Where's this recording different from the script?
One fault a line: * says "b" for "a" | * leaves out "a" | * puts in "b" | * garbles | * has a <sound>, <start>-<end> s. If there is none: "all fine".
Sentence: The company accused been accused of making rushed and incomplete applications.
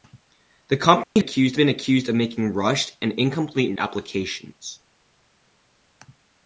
* has a dropout, 1.0-1.2 s